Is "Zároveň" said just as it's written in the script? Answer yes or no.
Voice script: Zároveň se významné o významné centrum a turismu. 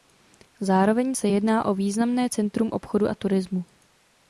yes